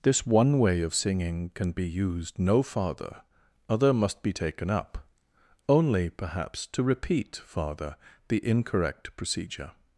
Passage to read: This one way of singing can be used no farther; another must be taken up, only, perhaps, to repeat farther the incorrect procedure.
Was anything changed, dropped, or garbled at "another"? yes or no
yes